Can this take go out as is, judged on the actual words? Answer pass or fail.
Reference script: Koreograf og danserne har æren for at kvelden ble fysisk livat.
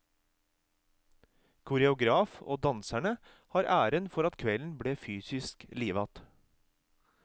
pass